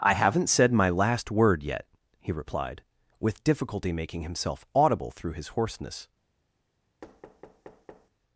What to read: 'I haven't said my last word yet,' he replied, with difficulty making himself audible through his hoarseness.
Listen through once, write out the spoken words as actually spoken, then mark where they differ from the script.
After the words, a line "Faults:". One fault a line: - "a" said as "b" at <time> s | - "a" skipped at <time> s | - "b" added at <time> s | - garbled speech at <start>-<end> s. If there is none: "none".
'I haven't said my last word yet,' he replied, with difficulty making himself audible through his hoarseness.
Faults:
none